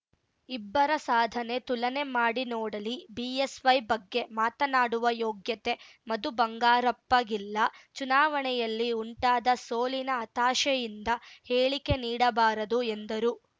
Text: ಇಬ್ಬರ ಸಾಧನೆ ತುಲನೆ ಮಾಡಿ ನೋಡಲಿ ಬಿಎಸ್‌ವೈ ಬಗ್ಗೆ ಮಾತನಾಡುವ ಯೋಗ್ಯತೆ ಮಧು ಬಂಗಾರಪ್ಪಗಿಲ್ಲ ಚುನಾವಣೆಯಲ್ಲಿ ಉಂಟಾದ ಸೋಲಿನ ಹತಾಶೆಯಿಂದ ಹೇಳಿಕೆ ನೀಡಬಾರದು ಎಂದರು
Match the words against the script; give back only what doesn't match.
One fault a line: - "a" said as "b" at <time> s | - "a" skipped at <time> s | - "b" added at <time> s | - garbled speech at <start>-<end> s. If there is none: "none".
none